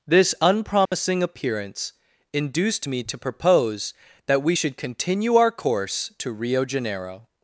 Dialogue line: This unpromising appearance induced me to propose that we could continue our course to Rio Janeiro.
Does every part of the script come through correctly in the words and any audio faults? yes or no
no